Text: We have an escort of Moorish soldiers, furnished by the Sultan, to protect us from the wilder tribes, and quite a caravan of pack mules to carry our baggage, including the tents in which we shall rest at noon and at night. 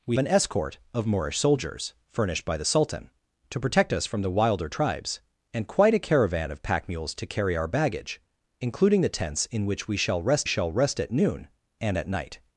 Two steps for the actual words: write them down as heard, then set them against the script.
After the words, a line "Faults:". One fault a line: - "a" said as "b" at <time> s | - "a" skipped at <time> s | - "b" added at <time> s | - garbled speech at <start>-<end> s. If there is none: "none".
We an escort of Moorish soldiers, furnished by the Sultan, to protect us from the wilder tribes, and quite a caravan of pack mules to carry our baggage, including the tents in which we shall rest shall rest at noon and at night.
Faults:
- "have" skipped at 0.2 s
- "shall rest" added at 10.4 s